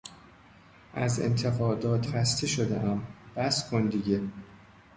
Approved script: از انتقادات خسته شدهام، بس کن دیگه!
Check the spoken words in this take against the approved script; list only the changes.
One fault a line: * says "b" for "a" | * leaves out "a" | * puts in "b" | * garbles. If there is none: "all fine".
all fine